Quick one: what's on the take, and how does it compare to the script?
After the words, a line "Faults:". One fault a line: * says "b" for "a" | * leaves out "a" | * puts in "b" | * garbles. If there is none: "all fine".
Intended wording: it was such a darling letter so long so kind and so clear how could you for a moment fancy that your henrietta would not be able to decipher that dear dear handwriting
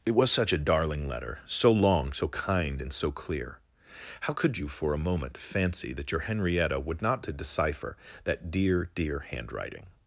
it was such a darling letter so long so kind and so clear how could you for a moment fancy that your henrietta would not to decipher that dear dear handwriting
Faults:
* leaves out "be able"